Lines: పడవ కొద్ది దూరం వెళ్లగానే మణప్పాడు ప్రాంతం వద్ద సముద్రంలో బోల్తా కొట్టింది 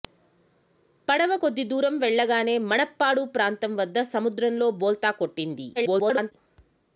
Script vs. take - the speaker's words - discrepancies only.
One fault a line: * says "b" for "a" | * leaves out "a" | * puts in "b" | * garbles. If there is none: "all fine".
* garbles